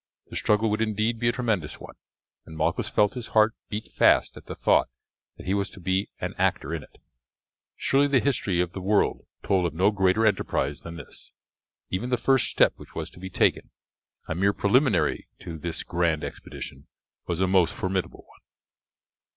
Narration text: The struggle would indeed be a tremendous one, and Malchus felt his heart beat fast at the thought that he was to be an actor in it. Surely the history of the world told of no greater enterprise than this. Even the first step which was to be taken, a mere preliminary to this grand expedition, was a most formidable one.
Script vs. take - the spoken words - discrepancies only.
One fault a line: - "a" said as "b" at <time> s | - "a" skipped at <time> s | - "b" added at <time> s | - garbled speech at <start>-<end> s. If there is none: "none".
none